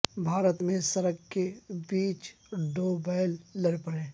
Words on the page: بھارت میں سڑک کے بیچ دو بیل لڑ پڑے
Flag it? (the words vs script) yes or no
no